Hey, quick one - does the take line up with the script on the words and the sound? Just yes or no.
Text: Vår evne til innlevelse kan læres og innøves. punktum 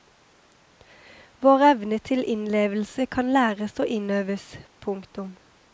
yes